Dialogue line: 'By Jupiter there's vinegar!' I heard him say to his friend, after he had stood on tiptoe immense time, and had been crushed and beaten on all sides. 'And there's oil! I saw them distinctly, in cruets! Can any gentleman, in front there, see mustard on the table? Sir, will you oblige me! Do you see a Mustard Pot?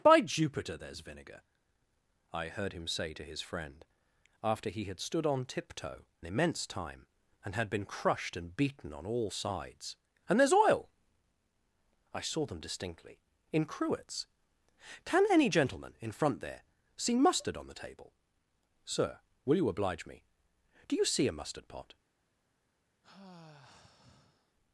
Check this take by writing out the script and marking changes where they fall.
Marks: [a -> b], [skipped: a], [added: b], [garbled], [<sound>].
'By Jupiter there's vinegar!' I heard him say to his friend, after he had stood on tiptoe immense time, and had been crushed and beaten on all sides. 'And there's oil! I saw them distinctly, in cruets! Can any gentleman, in front there, see mustard on the table? Sir, will you oblige me! Do you see a Mustard Pot? [sigh]